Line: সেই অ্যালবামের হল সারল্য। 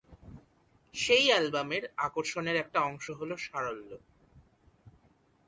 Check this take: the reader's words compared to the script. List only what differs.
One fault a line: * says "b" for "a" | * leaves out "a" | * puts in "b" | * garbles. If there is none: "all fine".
* puts in "আকর্ষণের একটা অংশ"